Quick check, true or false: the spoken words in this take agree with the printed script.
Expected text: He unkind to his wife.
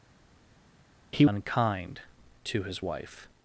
true